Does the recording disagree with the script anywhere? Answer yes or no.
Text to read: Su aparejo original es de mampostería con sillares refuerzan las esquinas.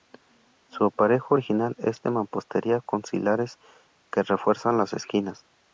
yes